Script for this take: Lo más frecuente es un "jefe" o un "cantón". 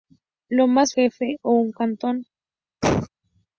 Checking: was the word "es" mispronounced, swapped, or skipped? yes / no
yes